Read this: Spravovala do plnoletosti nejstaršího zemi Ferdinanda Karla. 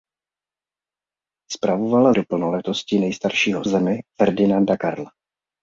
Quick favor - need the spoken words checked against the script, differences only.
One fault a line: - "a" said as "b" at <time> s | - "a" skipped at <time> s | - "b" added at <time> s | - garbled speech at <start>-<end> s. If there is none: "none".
none